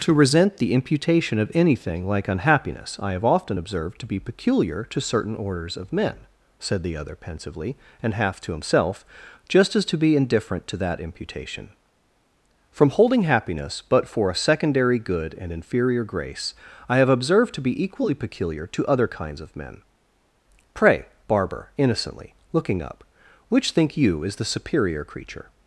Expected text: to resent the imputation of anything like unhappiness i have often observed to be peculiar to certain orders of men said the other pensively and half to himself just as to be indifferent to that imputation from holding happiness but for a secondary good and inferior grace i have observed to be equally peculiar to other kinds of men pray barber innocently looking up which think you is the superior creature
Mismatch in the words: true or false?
false